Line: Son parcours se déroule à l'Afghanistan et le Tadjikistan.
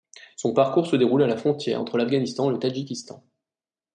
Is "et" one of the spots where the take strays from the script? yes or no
no